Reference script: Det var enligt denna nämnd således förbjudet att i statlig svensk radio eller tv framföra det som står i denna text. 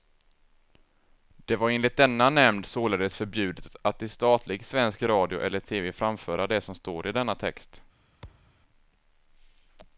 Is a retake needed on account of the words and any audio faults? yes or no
yes